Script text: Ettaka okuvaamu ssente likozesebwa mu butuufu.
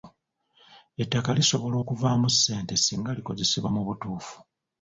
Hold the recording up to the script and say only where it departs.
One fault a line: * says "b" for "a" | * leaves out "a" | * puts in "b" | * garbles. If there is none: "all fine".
* puts in "lisobola"
* puts in "singa"